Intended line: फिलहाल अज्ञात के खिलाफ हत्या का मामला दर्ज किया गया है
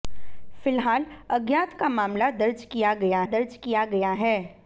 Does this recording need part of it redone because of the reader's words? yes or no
yes